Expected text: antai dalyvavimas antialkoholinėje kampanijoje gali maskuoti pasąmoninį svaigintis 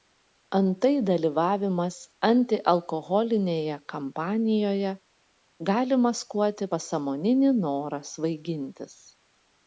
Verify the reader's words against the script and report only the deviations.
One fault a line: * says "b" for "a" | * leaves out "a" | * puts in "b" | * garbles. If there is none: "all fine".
* puts in "norą"